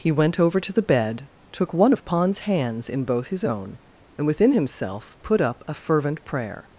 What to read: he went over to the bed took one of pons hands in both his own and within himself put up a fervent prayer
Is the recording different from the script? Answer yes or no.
no